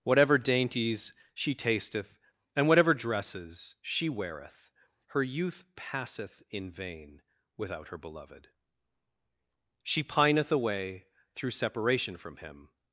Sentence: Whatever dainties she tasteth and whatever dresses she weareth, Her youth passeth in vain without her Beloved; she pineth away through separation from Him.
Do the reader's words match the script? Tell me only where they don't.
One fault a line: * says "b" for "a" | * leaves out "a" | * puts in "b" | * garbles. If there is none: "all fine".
all fine